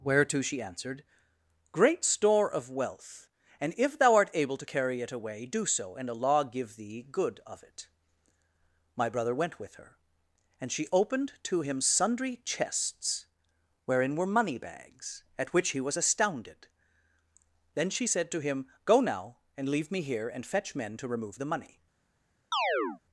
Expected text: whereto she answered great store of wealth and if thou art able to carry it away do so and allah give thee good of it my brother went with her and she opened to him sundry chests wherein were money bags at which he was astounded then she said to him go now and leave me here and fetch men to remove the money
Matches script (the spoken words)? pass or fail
pass